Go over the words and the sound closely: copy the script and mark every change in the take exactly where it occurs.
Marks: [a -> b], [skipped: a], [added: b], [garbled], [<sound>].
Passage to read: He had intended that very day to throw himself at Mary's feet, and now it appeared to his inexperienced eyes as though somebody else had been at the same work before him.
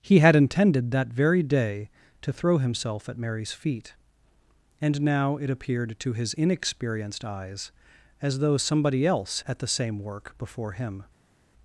He had intended that very day to throw himself at Mary's feet, and now it appeared to his inexperienced eyes as though somebody else [skipped: had been] at the same work before him.